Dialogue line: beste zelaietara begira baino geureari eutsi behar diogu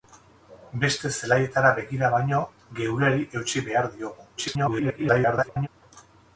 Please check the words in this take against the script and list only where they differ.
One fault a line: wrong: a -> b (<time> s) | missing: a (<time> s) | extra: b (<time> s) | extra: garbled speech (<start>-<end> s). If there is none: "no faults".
extra: garbled speech (4.4-5.7 s)